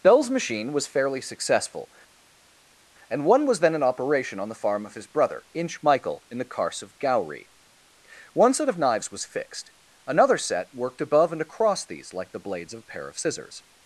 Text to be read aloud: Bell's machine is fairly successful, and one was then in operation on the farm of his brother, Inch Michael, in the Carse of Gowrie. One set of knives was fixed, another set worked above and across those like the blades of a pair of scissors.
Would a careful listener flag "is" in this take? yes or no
yes